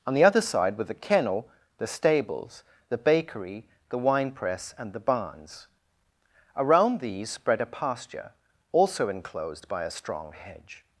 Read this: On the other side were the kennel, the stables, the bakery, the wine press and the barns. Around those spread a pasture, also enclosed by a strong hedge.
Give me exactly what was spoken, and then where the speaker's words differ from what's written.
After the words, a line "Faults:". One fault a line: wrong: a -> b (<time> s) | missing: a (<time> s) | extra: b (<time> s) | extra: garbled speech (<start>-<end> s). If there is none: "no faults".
On the other side were the kennel, the stables, the bakery, the wine press and the barns. Around these spread a pasture, also enclosed by a strong hedge.
Faults:
wrong: those -> these (7.0 s)